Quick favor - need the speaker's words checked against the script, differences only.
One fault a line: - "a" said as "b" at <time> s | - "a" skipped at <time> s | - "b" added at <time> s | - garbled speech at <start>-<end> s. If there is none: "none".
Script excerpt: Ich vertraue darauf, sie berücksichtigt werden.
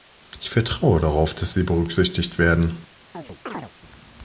- "dass" added at 1.4 s